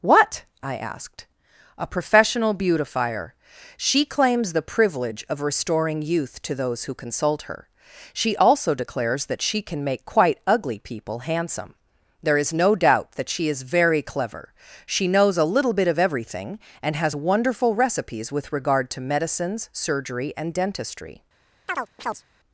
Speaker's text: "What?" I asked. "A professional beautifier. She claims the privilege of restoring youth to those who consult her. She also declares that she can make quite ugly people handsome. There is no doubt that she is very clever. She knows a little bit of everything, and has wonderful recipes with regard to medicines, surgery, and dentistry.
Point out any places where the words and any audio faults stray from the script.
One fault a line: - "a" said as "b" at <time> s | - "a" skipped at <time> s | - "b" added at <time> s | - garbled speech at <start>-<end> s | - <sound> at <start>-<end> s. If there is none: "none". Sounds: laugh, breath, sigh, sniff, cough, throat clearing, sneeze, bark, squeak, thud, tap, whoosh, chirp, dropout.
- chirp at 21.7-22.2 s